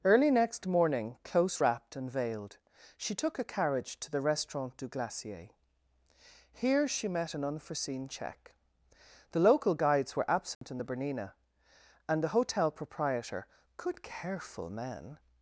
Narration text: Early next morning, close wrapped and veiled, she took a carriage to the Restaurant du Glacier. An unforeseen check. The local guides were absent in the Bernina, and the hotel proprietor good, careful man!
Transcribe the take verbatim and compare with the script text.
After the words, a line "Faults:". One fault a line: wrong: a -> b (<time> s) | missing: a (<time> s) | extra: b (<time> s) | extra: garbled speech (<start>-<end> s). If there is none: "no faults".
Early next morning, close wrapped and veiled, she took a carriage to the Restaurant du Glacier. Here she met an unforeseen check. The local guides were absent in the Bernina, and the hotel proprietor good, careful man!
Faults:
extra: Here she met (6.5 s)